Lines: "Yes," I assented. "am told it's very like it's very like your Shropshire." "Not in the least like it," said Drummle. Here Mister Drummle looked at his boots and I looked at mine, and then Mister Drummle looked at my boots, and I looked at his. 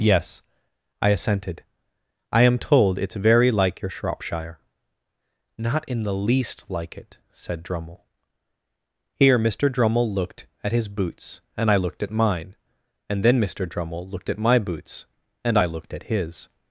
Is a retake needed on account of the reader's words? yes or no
yes